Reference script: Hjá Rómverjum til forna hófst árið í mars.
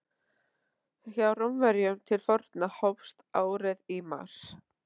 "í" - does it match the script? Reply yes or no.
yes